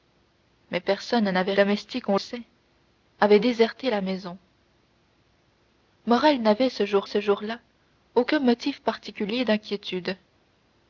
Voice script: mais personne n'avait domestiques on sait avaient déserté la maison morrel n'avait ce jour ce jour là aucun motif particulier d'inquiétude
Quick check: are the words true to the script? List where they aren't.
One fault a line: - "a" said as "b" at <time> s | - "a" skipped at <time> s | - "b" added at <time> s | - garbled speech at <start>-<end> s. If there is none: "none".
none